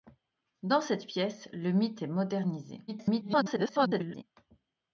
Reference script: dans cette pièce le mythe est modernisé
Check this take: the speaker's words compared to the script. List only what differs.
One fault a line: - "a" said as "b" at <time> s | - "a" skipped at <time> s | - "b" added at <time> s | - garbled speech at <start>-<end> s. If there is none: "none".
- garbled speech at 2.9-4.2 s